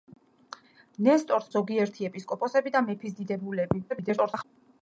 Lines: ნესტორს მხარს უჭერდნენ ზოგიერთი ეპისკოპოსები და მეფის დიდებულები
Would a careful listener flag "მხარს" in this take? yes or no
yes